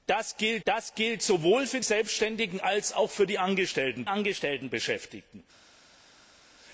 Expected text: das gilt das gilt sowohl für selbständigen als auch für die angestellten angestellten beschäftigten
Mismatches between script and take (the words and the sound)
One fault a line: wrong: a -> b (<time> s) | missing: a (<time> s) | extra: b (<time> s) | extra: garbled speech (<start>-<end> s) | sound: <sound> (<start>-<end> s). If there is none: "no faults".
no faults